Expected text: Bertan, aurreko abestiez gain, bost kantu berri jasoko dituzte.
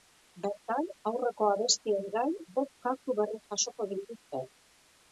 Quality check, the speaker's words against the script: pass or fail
pass